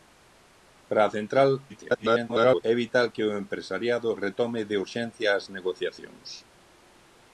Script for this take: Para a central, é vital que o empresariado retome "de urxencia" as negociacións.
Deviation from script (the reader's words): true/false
true